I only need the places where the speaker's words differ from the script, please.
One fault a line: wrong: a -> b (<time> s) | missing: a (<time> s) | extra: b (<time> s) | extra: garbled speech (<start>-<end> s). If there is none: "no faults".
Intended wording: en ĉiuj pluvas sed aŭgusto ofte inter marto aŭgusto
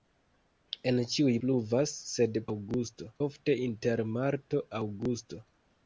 no faults